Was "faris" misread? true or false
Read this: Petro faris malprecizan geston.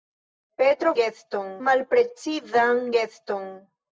true